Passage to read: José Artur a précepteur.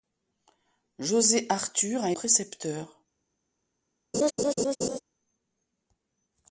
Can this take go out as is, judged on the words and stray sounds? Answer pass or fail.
fail